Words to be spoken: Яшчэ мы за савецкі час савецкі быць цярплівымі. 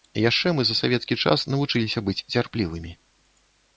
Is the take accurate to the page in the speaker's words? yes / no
no